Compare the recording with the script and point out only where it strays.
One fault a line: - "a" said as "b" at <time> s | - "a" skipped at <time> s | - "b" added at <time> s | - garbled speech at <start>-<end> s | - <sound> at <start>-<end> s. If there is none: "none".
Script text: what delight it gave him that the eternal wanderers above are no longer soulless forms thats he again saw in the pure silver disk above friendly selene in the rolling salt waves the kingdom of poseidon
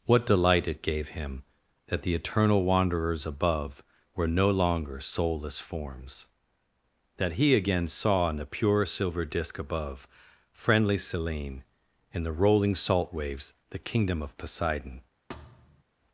- "are" said as "were" at 4.2 s
- "thats" said as "that" at 7.2 s
- thud at 15.3-15.8 s